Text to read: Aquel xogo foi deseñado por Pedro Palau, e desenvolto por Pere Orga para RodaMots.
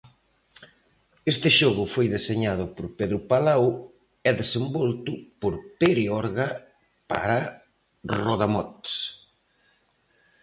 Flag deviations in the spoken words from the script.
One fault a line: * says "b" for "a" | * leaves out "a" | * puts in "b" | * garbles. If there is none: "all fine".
* says "Este" for "Aquel"